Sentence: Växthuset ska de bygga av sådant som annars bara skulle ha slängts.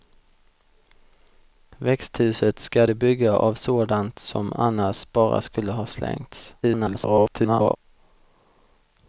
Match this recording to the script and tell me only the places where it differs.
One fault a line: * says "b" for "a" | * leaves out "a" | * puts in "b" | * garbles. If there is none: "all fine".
* garbles